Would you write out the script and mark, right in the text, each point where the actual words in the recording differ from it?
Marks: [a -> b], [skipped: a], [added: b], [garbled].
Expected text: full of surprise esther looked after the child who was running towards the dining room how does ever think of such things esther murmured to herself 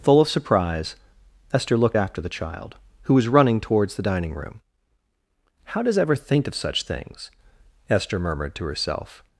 full of surprise esther looked after the child who was running towards the dining room how does ever think of such things esther murmured to herself